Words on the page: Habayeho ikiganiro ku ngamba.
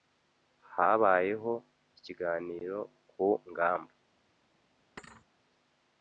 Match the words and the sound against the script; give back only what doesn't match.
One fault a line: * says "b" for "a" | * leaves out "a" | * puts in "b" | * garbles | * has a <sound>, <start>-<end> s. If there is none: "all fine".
* has a thud, 5.0-5.3 s